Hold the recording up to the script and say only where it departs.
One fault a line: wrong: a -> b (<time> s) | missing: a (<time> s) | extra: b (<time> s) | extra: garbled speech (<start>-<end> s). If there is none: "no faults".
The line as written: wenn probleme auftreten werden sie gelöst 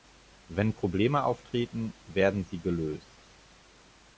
no faults